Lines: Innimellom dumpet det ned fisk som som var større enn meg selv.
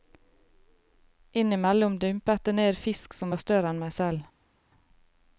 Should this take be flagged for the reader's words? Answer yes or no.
yes